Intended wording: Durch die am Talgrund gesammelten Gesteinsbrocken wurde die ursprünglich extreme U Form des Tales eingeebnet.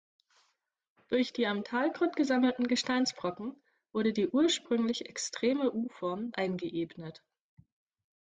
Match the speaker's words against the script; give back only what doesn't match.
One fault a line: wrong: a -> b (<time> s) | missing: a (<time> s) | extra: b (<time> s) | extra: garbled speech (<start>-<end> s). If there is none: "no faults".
missing: des Tales (6.3 s)